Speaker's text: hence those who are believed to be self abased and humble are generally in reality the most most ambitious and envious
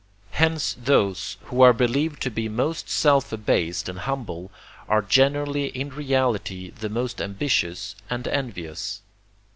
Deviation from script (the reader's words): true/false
true